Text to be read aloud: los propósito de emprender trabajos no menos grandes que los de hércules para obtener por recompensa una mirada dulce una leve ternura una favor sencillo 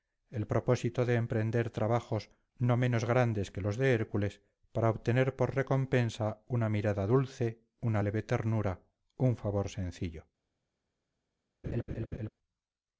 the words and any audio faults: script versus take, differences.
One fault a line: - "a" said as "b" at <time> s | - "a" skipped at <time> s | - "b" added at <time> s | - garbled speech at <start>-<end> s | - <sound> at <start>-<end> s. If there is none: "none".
- "los" said as "el" at 0.3 s
- "una" said as "un" at 9.2 s
- laugh at 11.6-12.3 s